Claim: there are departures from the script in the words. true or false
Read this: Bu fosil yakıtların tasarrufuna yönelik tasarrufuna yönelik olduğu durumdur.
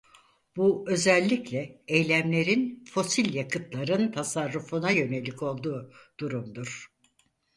true